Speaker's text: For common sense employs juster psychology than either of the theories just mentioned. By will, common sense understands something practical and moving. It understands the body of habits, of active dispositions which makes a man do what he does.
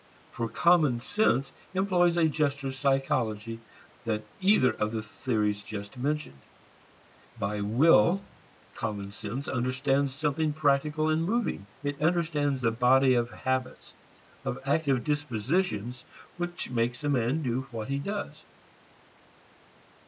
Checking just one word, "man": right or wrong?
right